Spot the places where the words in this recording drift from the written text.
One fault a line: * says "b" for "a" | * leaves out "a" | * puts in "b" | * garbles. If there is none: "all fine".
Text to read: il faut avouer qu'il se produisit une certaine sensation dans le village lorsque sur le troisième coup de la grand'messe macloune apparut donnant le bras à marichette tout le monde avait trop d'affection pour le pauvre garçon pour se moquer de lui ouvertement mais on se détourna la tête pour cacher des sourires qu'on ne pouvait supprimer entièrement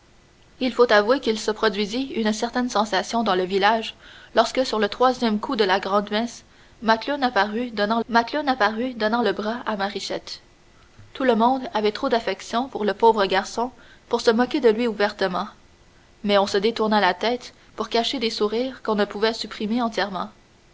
* puts in "macloune apparut donnant"